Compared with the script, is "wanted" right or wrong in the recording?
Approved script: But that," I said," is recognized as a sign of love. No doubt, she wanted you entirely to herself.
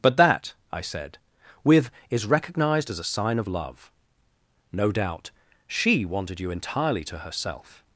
right